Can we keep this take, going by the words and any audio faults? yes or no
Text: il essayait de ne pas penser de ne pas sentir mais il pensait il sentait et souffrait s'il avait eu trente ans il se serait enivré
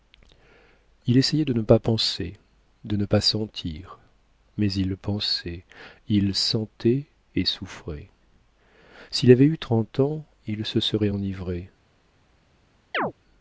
no